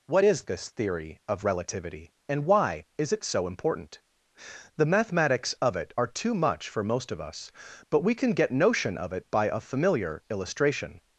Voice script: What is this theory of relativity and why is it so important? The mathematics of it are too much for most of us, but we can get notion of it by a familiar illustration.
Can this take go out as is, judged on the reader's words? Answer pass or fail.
pass